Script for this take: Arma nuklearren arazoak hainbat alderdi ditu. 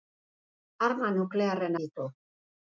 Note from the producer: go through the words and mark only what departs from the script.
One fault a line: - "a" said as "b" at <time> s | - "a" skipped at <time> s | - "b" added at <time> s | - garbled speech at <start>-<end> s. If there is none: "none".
- "arazoak hainbat alderdi" skipped at 1.8 s